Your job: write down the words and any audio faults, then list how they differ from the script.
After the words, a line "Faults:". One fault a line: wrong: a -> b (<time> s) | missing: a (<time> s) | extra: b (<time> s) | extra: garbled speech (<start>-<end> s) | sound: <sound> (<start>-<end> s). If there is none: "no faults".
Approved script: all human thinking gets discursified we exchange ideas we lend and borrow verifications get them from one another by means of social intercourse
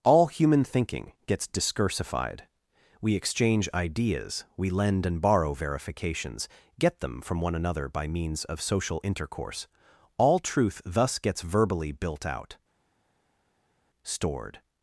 all human thinking gets discursified we exchange ideas we lend and borrow verifications get them from one another by means of social intercourse all truth thus gets verbally built out stored
Faults:
extra: all truth thus gets verbally built out stored (10.2 s)